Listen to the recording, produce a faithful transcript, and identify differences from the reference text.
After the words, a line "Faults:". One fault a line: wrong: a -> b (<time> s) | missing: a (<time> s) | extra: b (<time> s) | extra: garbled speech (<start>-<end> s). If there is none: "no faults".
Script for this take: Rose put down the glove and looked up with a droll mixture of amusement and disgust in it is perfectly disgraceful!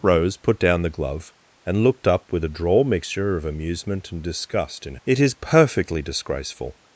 Rose put down the glove and looked up with a droll mixture of amusement and disgust in it is perfectly disgraceful!
Faults:
no faults